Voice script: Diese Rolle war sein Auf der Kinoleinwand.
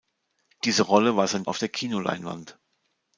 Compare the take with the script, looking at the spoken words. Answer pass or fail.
pass